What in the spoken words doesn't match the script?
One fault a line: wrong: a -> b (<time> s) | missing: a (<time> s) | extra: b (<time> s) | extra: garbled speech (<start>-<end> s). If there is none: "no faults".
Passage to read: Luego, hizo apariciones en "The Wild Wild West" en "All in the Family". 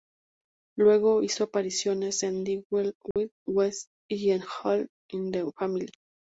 extra: y (4.1 s)